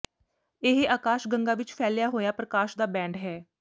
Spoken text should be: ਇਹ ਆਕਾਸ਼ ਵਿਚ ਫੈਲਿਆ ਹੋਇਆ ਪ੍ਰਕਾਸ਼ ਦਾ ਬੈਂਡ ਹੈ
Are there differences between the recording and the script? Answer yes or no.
yes